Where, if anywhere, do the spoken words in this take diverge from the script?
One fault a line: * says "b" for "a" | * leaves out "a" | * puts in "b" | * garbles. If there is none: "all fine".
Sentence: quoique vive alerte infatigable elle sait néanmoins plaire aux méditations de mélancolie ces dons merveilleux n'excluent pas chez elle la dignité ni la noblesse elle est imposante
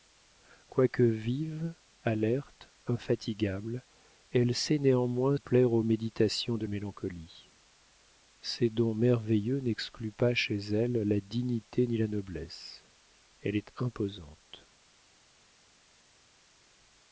all fine